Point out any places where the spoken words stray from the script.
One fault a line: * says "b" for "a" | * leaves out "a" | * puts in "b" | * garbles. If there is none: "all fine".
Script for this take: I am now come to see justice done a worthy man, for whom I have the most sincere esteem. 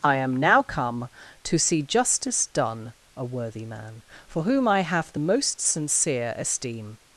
all fine